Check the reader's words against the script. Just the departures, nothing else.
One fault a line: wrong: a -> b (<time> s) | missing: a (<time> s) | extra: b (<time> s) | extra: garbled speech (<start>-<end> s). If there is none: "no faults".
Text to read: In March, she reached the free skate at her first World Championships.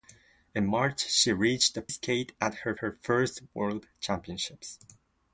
missing: free (1.8 s)
extra: her (2.8 s)